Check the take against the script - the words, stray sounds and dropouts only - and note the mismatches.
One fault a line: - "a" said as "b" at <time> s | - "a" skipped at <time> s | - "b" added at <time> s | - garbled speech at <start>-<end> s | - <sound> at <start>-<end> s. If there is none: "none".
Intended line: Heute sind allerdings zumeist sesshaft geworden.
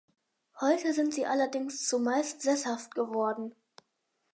- "sie" added at 1.1 s